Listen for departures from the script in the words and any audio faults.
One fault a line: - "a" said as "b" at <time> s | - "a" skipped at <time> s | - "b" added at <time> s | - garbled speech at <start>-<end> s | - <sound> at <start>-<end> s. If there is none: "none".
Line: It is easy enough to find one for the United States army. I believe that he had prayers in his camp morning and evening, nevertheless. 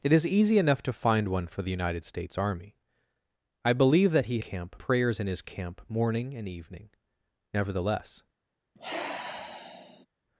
- "had" said as "camp" at 4.4 s
- sigh at 8.8-10.1 s